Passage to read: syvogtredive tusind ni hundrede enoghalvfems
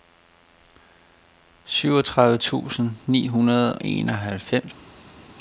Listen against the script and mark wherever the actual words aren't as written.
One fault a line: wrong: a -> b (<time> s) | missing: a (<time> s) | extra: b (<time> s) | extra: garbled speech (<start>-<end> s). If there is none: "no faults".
no faults